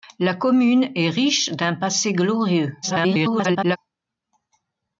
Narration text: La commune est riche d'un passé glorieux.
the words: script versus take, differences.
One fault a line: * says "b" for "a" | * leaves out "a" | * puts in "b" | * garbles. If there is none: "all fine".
* garbles